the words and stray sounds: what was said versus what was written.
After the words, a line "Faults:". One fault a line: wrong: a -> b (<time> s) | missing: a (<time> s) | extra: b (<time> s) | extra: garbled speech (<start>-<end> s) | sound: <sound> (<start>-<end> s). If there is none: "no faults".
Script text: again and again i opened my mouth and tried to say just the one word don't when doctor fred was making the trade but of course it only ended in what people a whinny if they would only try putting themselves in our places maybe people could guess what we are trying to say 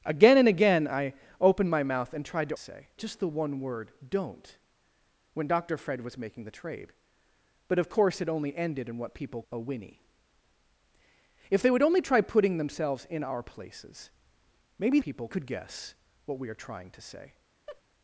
again and again i opened my mouth and tried to say just the one word don't when doctor fred was making the trade but of course it only ended in what people a whinny if they would only try putting themselves in our places maybe people could guess what we are trying to say
Faults:
sound: laugh (17.7-17.8 s)